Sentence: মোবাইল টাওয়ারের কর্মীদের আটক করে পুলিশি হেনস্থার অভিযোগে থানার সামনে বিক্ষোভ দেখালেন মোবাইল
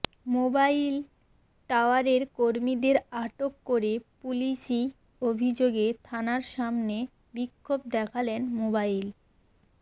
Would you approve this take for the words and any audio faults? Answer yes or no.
no